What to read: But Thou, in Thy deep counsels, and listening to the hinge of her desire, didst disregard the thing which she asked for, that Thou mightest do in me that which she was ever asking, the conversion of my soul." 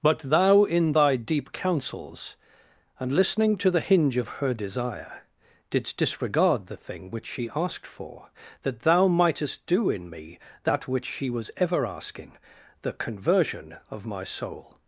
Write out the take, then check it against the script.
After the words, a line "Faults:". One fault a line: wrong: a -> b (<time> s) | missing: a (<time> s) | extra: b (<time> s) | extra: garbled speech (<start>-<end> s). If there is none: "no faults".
But Thou, in Thy deep counsels, and listening to the hinge of her desire, didst disregard the thing which she asked for, that Thou mightest do in me that which she was ever asking, the conversion of my soul."
Faults:
no faults